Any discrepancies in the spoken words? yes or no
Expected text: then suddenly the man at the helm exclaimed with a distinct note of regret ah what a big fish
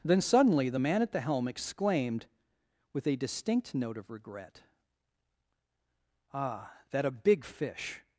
yes